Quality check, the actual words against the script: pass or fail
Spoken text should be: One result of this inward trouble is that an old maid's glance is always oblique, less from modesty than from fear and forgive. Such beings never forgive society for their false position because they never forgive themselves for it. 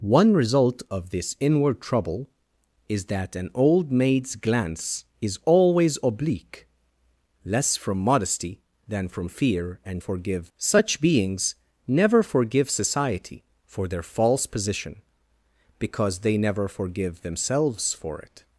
pass